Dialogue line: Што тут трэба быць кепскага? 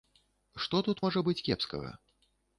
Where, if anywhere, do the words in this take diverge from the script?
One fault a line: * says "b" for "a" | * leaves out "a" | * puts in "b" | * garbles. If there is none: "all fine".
* says "можа" for "трэба"